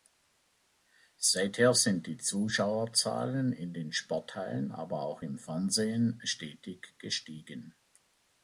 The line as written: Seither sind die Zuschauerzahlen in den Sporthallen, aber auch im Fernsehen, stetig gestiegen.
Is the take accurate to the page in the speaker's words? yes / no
yes